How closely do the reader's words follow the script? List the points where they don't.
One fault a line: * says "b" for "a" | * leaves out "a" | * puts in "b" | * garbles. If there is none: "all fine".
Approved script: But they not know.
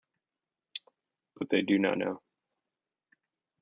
* puts in "do"